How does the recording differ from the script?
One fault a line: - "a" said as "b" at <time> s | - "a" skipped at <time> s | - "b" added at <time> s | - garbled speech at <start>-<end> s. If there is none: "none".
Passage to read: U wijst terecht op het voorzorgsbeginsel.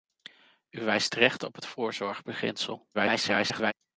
- garbled speech at 2.9-3.7 s